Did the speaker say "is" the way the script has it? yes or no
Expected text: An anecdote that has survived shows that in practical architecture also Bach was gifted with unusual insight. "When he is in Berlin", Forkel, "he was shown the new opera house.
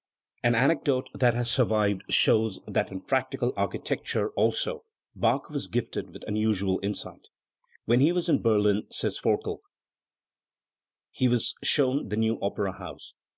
no